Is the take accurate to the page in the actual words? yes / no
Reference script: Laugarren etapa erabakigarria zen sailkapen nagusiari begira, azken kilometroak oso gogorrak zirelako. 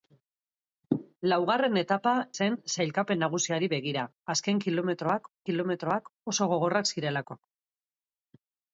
no